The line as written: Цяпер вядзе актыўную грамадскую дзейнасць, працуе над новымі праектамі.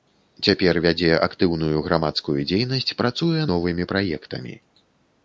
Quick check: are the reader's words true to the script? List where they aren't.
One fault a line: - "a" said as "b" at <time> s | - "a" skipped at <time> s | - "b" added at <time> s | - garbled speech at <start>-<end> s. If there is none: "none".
- "над" skipped at 3.4 s